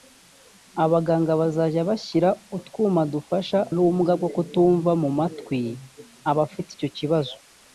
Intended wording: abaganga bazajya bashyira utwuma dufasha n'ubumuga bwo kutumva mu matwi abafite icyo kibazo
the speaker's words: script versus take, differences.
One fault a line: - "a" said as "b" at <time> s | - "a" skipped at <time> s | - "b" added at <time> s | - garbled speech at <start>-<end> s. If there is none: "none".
none